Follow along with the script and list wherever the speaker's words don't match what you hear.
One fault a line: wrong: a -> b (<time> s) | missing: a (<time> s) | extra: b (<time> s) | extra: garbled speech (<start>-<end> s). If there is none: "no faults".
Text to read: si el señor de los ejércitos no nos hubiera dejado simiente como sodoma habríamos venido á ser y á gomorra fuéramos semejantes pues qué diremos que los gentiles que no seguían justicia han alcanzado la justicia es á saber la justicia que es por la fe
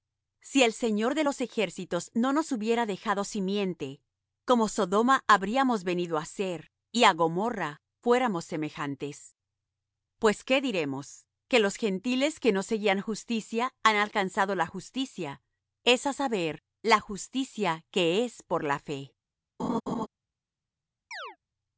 no faults